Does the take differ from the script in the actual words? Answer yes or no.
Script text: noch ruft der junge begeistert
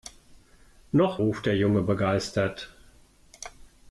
no